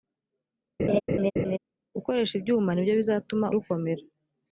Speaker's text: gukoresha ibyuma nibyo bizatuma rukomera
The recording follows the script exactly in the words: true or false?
true